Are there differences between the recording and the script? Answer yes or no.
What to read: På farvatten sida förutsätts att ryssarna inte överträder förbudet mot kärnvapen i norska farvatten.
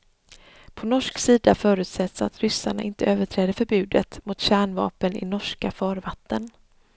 yes